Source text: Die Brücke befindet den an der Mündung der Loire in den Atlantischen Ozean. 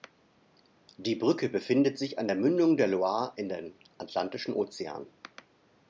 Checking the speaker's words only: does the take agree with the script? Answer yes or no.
no